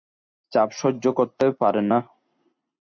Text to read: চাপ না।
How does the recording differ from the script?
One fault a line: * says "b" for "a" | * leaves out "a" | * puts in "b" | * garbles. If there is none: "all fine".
* puts in "সহ্য করতে পারেন"